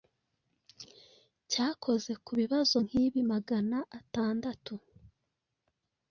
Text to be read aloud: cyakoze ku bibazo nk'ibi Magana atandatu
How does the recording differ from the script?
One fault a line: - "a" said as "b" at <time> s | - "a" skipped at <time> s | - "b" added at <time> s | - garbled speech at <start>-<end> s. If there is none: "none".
none